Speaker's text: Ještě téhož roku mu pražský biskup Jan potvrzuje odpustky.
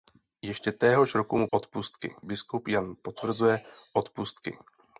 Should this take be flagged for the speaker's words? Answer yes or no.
yes